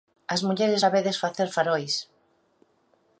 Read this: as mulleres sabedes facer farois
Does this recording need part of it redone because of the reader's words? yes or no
no